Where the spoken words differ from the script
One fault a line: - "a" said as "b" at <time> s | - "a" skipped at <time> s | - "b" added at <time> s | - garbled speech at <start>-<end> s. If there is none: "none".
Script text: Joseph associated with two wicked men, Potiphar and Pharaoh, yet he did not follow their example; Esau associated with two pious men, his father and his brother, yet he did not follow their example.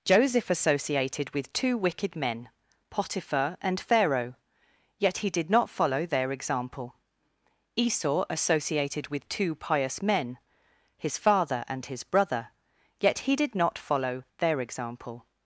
none